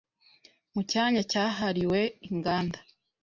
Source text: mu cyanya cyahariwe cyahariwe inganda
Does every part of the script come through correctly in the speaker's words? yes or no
no